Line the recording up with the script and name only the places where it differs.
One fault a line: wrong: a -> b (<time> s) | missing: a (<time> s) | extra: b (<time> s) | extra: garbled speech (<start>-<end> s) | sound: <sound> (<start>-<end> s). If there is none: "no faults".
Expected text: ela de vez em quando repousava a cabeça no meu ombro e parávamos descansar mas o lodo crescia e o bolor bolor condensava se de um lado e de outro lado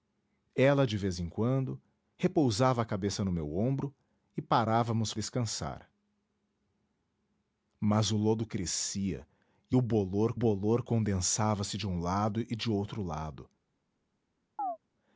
sound: chirp (14.6-14.8 s)